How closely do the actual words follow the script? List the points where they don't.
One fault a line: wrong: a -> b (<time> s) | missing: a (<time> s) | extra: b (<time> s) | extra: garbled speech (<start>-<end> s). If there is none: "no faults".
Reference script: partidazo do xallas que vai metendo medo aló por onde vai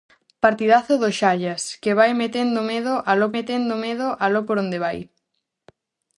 extra: metendo medo aló (3.4 s)